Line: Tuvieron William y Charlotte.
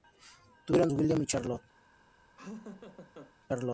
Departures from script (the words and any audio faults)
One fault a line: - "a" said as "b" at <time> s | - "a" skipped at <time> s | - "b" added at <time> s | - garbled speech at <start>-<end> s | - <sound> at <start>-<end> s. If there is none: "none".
- laugh at 2.4-3.3 s